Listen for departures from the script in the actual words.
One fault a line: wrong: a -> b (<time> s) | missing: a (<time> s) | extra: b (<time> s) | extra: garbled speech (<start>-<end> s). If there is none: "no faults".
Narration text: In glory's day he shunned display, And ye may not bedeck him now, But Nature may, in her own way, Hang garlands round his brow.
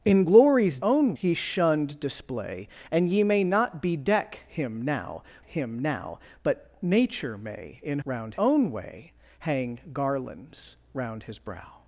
wrong: day -> own (0.8 s)
extra: him now (5.5 s)
wrong: her -> round (8.1 s)